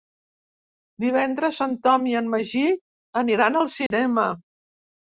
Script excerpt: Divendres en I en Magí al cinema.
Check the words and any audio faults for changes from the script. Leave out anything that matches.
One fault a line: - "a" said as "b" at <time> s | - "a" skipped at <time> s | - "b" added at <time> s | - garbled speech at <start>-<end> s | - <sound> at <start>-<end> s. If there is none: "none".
- "Tom" added at 1.9 s
- "aniran" added at 3.2 s
- dropout at 3.9-3.9 s